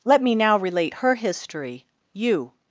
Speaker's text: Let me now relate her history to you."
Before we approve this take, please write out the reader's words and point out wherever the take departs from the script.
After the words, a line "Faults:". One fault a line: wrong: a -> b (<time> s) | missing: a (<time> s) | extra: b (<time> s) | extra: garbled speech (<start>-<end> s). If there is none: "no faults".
Let me now relate her history you."
Faults:
missing: to (1.9 s)